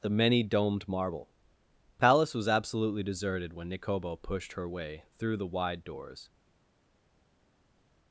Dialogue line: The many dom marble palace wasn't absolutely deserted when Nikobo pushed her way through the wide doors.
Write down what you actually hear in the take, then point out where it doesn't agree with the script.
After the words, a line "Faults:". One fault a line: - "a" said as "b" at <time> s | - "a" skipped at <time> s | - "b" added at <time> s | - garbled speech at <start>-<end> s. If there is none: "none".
The many domed marble palace was absolutely deserted when Nikobo pushed her way through the wide doors.
Faults:
- "dom" said as "domed" at 0.4 s
- "wasn't" said as "was" at 2.3 s